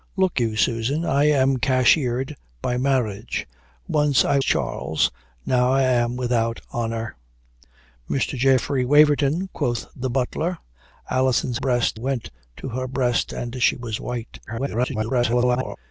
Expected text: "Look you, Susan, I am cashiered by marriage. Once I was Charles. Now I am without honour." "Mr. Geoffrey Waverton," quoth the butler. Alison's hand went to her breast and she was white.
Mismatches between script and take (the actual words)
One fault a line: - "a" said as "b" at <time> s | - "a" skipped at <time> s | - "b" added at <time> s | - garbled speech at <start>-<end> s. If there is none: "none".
- "was" skipped at 4.4 s
- "hand" said as "breast" at 11.5 s
- garbled speech at 14.5-15.8 s